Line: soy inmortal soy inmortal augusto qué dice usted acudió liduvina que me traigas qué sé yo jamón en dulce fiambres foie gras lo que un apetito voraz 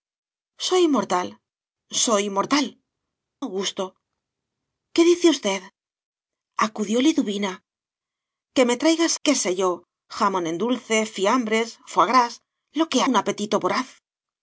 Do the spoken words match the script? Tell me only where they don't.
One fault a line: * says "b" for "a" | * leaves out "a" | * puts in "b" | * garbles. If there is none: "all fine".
all fine